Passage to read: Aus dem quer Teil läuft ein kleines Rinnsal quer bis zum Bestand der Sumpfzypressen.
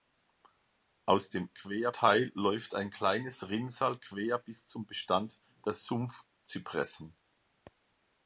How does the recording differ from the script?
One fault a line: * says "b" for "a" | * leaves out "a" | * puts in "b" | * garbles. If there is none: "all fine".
all fine